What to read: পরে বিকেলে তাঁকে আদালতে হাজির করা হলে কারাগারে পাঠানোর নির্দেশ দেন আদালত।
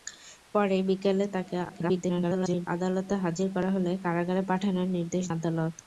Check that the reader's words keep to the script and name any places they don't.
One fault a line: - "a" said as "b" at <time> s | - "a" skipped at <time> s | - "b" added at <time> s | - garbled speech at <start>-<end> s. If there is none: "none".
- garbled speech at 1.7-2.7 s
- "দেন" skipped at 5.2 s